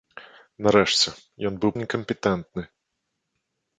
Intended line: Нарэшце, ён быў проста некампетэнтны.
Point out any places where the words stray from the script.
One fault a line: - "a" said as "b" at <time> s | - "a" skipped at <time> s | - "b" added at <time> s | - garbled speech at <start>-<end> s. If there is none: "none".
- "проста" skipped at 1.7 s